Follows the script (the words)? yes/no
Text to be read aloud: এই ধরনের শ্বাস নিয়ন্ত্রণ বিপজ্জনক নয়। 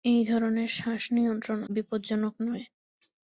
yes